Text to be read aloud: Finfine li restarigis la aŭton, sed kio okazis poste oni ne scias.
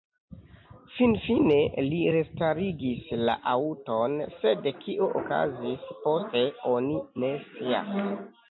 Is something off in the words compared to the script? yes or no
no